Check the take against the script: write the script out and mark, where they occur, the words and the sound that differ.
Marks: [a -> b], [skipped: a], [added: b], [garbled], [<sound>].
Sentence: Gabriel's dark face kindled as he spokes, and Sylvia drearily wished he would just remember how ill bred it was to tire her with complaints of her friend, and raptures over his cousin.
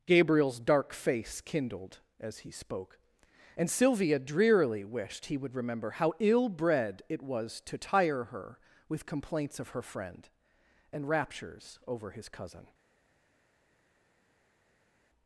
Gabriel's dark face kindled as he [spokes, -> spoke] and Sylvia drearily wished he would [skipped: just] remember how ill bred it was to tire her with complaints of her friend, and raptures over his cousin.